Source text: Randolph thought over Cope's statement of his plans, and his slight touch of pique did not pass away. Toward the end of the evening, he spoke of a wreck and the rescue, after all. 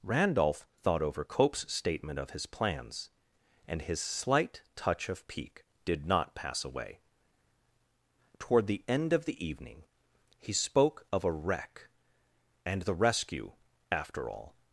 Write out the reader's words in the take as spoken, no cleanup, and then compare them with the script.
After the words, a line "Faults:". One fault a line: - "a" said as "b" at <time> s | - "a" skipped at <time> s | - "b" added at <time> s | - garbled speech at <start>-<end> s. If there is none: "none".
Randolph thought over Cope's statement of his plans, and his slight touch of pique did not pass away. Toward the end of the evening, he spoke of a wreck and the rescue, after all.
Faults:
none